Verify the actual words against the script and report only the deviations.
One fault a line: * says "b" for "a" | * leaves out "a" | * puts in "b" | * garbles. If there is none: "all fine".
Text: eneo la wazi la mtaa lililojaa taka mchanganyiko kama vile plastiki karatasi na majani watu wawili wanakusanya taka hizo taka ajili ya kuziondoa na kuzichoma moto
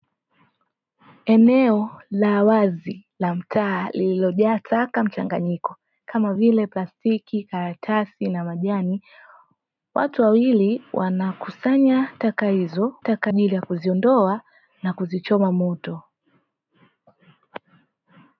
all fine